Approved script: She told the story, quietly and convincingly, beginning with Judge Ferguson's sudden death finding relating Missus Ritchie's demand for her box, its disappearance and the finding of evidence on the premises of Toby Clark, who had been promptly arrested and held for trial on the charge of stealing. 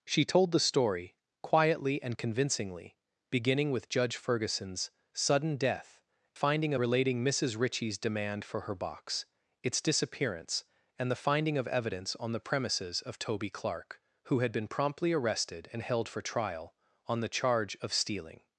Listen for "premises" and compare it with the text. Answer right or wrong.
right